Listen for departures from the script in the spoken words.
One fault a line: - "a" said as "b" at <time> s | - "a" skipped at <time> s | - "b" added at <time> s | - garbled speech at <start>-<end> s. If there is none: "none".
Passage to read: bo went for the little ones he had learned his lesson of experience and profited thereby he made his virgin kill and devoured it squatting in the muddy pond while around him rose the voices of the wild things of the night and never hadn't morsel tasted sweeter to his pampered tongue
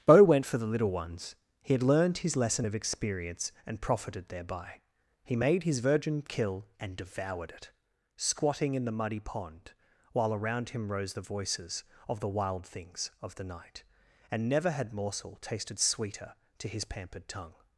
- "hadn't" said as "had" at 14.7 s